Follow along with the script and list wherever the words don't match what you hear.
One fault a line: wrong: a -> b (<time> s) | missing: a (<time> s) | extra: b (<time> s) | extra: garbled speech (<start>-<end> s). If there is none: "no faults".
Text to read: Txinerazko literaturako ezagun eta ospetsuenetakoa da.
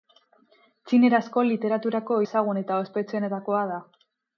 no faults